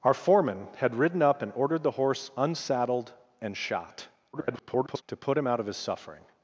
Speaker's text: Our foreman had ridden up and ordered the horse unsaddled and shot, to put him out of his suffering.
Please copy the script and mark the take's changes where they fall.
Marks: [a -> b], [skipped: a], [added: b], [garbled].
Our foreman had ridden up and ordered the horse unsaddled and shot, [garbled] to put him out of his suffering.